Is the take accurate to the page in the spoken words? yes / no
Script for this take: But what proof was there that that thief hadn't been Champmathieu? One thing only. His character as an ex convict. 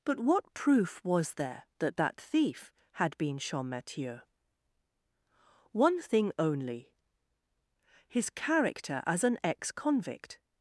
no